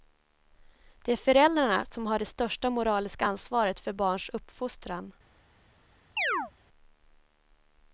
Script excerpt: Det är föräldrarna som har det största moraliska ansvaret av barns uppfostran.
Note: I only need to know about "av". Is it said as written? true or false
false